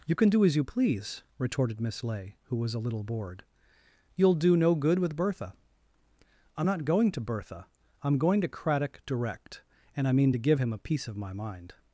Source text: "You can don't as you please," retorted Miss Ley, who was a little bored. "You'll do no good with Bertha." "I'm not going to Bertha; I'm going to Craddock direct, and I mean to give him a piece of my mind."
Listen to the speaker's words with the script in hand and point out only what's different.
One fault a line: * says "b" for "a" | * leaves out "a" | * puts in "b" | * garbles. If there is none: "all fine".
* says "do" for "don't"